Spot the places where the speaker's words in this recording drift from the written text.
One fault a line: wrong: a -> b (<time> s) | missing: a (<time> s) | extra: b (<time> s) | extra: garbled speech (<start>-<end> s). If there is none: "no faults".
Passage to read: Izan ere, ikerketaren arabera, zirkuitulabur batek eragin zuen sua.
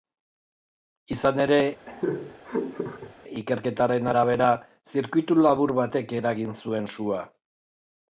no faults